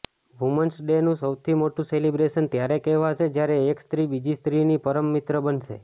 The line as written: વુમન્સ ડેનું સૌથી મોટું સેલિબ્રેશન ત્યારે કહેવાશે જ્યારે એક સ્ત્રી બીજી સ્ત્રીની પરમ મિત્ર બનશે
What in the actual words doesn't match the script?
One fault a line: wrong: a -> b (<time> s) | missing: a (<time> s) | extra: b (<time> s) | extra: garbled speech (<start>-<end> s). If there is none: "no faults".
no faults